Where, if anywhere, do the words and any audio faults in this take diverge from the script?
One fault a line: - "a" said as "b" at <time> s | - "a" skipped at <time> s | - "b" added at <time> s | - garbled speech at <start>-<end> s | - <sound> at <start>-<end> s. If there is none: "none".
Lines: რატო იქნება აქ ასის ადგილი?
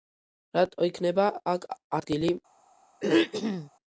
- "ასის" skipped at 1.7 s
- throat clearing at 3.0-3.7 s